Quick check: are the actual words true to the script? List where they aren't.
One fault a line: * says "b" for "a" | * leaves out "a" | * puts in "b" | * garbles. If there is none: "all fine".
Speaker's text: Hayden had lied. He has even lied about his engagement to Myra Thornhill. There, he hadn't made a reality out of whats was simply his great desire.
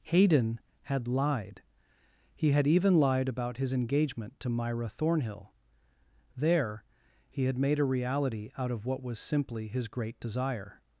* says "had" for "has"
* says "had" for "hadn't"
* says "what" for "whats"